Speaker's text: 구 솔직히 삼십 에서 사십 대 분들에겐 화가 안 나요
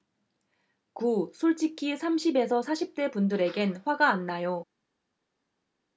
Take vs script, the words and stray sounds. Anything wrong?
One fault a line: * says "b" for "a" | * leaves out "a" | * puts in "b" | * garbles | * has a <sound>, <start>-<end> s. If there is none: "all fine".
all fine